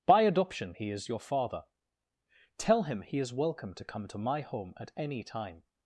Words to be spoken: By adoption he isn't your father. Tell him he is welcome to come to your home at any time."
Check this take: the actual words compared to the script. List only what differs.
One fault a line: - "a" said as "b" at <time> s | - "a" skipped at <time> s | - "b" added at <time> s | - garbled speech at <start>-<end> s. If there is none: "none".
- "isn't" said as "is" at 0.9 s
- "your" said as "my" at 4.2 s